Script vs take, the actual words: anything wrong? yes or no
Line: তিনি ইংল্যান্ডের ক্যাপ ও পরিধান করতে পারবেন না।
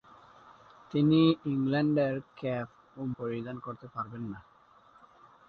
no